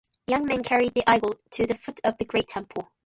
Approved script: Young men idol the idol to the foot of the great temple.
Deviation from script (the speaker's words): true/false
true